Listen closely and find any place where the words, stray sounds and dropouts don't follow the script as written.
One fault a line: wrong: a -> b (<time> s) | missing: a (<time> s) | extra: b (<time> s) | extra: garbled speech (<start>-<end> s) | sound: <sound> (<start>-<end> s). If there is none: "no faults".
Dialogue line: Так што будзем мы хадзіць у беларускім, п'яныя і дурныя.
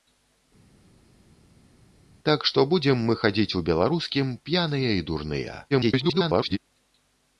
extra: garbled speech (5.7-6.6 s)